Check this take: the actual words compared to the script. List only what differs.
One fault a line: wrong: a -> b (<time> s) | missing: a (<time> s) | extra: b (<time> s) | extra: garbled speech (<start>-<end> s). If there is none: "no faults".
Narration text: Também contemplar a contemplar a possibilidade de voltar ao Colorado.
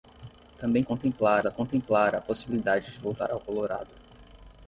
no faults